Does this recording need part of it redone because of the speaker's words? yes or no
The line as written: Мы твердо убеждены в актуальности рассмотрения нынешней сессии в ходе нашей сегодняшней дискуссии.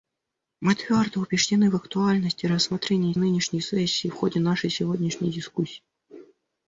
no